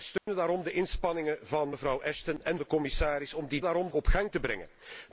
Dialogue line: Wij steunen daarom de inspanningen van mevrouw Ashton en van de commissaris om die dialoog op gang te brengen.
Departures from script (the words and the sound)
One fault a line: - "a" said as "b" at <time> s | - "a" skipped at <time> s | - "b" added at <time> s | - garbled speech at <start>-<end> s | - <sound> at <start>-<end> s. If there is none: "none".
- dropout at 0.2-0.3 s
- "van" skipped at 2.6 s
- "dialoog" said as "daarom" at 3.6 s